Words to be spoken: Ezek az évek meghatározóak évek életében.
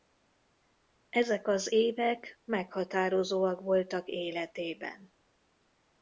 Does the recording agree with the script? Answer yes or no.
no